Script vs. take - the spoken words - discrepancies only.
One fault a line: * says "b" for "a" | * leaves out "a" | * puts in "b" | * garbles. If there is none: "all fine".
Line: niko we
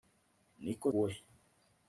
all fine